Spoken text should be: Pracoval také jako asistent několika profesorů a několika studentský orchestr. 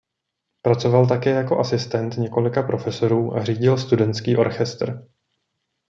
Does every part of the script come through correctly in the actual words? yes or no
no